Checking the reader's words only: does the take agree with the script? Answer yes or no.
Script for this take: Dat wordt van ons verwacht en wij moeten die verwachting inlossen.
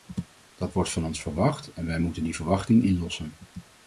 yes